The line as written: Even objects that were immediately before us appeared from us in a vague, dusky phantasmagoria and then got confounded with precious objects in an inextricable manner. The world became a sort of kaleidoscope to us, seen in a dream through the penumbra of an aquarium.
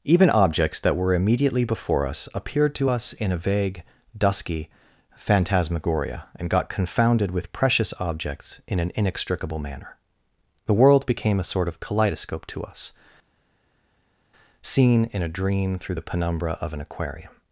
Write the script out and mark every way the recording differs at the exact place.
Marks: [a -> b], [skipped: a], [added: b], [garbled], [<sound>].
Even objects that were immediately before us appeared [from -> to] us in a vague, dusky phantasmagoria and [skipped: then] got confounded with precious objects in an inextricable manner. The world became a sort of kaleidoscope to us, seen in a dream through the penumbra of an aquarium.